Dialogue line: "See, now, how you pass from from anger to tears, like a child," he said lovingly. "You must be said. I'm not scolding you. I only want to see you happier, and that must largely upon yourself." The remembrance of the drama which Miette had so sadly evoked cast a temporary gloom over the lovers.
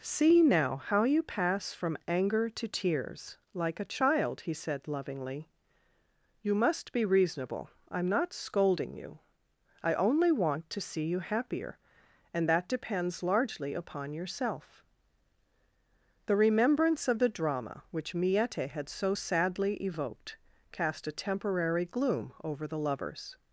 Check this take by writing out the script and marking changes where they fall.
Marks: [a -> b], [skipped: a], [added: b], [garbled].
"See, now, how you pass from [skipped: from] anger to tears, like a child," he said lovingly. "You must be [said. -> reasonable] I'm not scolding you. I only want to see you happier, and that [must -> depends] largely upon yourself." The remembrance of the drama which Miette had so sadly evoked cast a temporary gloom over the lovers.